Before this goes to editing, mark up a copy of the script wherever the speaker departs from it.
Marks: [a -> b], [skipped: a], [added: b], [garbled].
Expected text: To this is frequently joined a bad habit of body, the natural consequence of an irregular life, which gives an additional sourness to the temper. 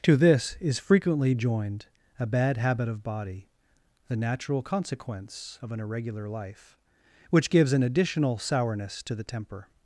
To this is frequently joined a bad habit of body, the natural consequence of an irregular life, which gives an additional sourness to the temper.